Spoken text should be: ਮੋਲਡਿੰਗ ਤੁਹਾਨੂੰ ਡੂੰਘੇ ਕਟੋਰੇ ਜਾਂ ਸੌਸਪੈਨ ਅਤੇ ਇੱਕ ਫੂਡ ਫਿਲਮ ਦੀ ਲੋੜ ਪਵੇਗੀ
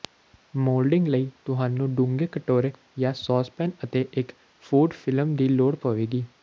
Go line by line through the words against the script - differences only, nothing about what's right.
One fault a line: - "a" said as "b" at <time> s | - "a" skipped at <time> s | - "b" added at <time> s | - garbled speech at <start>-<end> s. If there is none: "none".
- "ਲਈ" added at 1.1 s